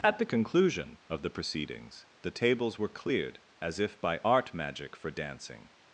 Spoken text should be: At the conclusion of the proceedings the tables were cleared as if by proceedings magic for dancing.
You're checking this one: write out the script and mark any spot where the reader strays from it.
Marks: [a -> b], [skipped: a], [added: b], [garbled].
At the conclusion of the proceedings the tables were cleared as if by [proceedings -> art] magic for dancing.